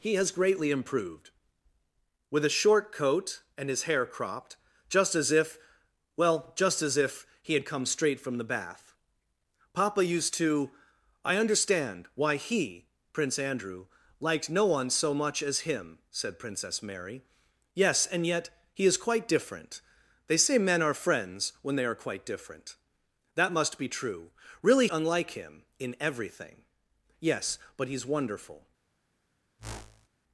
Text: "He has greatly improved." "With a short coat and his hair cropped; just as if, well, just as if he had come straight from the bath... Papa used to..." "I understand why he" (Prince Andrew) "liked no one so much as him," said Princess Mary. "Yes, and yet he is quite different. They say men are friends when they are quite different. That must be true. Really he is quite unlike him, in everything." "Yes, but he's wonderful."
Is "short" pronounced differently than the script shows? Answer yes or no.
no